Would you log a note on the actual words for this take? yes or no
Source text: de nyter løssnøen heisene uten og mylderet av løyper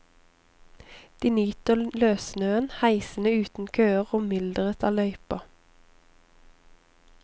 yes